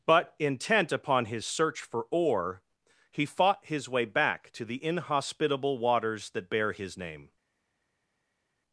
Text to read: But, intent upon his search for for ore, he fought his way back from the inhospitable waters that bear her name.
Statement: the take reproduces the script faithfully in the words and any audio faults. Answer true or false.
false